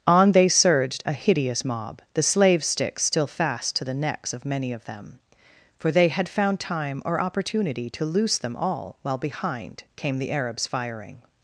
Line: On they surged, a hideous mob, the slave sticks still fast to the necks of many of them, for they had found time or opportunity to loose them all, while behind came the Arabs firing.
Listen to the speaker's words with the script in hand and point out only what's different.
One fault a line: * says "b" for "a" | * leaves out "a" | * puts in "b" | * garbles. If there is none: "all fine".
all fine